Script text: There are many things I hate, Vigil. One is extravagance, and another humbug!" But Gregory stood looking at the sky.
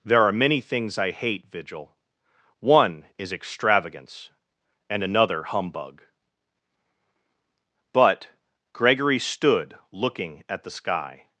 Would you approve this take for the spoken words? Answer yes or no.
yes